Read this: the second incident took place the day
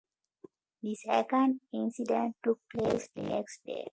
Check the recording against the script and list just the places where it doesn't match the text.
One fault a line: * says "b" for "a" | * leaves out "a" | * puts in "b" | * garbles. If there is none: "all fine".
* puts in "next"